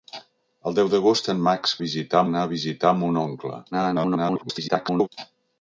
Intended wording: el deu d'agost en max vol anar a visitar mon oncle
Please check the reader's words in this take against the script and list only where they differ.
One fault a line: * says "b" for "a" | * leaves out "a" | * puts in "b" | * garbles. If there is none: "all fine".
* says "visitar" for "vol"
* garbles